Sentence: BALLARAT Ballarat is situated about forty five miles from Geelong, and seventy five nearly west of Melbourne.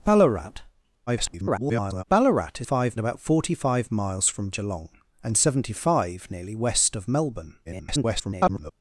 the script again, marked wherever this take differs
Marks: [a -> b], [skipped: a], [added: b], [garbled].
BALLARAT [garbled] Ballarat is [situated -> five] about forty five miles from Geelong, and seventy five nearly west of Melbourne. [garbled]